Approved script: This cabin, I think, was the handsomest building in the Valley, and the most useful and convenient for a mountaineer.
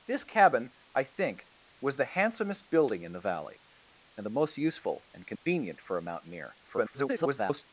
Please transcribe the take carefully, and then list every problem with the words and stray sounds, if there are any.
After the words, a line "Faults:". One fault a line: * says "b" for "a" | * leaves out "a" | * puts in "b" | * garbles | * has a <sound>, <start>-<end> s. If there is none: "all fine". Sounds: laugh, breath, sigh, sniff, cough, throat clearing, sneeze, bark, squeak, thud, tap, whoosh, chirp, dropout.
This cabin, I think, was the handsomest building in the Valley, and the most useful and convenient for a mountaineer. [garbled]
Faults:
* has a dropout, 5.4-5.5 s
* garbles